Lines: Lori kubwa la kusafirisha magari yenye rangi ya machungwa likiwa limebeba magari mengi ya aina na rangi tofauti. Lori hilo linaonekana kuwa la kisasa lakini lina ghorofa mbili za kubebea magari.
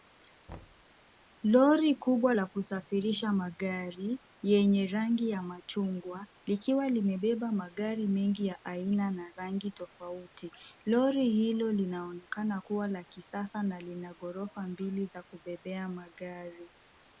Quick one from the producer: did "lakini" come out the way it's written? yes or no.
no